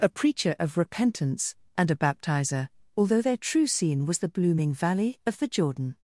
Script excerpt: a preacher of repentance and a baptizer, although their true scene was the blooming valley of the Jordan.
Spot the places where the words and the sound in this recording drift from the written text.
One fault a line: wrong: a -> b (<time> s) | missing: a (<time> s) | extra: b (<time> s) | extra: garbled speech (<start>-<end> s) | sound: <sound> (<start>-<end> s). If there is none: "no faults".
no faults